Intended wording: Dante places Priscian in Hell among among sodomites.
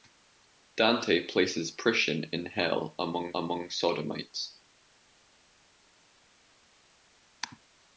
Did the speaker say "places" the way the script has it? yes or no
yes